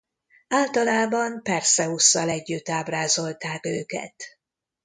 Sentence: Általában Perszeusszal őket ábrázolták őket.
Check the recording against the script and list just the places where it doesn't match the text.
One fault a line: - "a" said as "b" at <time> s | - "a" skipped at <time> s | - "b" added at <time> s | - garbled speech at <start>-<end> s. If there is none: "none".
- "őket" said as "együtt" at 2.3 s